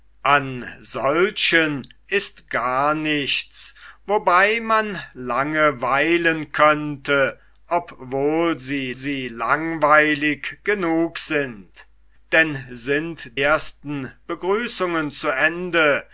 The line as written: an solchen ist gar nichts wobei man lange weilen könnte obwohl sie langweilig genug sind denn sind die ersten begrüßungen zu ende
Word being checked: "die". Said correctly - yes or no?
no